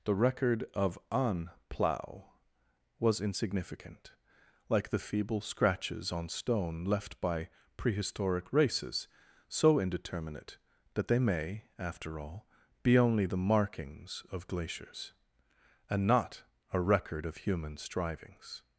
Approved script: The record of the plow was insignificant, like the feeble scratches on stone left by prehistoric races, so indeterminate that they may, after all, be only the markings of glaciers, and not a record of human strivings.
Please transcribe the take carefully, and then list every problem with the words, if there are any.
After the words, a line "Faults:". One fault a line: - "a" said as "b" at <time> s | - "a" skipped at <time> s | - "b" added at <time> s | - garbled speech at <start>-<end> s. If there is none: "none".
The record of an plow was insignificant, like the feeble scratches on stone left by prehistoric races, so indeterminate that they may, after all, be only the markings of glaciers, and not a record of human strivings.
Faults:
- "the" said as "an" at 1.1 s